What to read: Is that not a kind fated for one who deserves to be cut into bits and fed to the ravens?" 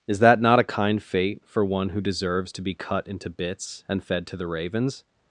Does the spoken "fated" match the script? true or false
false